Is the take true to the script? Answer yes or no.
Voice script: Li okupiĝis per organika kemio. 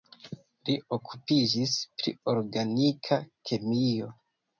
no